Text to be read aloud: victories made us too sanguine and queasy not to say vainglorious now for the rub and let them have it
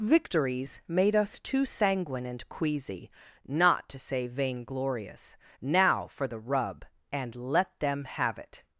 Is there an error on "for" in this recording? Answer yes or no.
no